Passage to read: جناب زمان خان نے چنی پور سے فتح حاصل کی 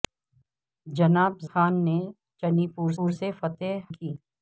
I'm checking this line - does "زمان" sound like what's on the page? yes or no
no